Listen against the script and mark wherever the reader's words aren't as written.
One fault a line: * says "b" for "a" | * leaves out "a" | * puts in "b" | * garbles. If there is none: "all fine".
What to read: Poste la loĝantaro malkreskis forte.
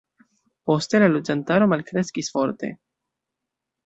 all fine